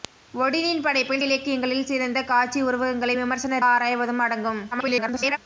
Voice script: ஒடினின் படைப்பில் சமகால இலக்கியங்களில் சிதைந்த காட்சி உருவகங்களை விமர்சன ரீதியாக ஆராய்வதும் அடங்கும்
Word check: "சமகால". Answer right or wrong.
wrong